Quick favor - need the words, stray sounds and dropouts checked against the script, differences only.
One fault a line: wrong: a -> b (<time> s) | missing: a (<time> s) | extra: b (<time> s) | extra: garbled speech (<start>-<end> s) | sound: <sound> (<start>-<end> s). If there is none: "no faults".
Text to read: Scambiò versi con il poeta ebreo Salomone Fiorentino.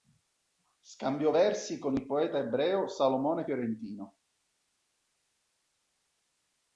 no faults